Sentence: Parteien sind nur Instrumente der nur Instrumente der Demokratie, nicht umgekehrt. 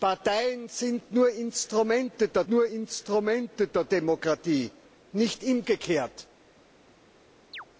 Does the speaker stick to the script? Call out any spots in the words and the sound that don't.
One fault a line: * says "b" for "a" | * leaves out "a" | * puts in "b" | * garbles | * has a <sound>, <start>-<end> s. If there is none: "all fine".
* has a chirp, 7.5-7.7 s